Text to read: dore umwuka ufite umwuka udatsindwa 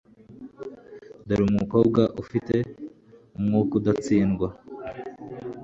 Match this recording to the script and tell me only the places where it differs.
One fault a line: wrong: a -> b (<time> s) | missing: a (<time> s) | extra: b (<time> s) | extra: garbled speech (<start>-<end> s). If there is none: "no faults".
wrong: umwuka -> umukobwa (1.5 s)